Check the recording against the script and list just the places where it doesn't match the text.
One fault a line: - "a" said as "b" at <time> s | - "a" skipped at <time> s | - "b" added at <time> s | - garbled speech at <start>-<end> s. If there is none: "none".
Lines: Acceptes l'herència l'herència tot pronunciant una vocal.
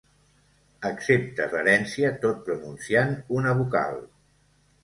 - "l'herència" skipped at 2.1 s